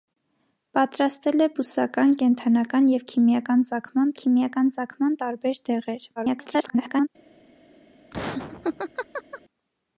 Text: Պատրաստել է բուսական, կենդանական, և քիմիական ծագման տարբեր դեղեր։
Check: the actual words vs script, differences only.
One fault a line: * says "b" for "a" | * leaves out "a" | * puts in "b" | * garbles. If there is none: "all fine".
* puts in "քիմիական ծագման"
* garbles